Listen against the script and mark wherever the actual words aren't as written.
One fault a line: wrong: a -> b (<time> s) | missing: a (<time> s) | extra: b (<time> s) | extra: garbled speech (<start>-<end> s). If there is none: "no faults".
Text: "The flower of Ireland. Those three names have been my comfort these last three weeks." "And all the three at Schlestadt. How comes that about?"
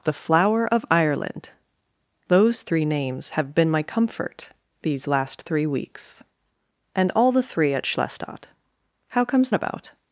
missing: that (9.5 s)